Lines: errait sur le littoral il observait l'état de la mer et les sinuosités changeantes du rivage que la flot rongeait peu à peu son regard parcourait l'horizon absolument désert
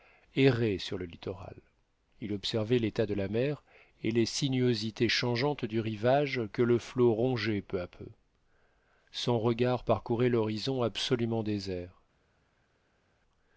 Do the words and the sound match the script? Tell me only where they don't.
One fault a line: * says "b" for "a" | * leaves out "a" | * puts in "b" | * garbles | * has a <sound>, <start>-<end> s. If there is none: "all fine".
* says "le" for "la"